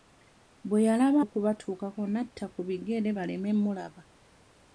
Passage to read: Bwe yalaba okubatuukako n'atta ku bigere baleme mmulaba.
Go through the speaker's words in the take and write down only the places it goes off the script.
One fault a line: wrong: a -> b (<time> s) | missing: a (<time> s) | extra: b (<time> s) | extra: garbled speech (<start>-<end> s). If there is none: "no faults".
no faults